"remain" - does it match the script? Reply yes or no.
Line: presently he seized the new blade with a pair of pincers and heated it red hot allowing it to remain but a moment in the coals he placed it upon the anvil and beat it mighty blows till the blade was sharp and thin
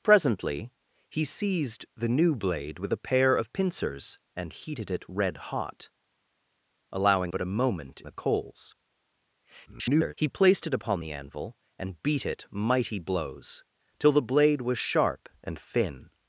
no